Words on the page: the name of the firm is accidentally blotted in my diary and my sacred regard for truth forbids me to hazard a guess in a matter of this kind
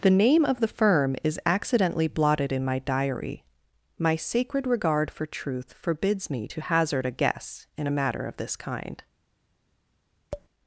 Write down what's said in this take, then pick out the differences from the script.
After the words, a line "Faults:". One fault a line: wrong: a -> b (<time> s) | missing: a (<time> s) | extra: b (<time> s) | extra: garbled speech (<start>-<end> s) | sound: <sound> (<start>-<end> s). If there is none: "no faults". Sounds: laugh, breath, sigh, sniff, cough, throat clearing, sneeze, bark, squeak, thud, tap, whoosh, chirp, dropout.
the name of the firm is accidentally blotted in my diary my sacred regard for truth forbids me to hazard a guess in a matter of this kind
Faults:
missing: and (3.4 s)
sound: tap (10.3-10.5 s)